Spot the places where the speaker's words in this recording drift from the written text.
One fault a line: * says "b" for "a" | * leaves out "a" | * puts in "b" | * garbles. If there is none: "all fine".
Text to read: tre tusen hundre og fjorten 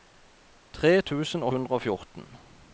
all fine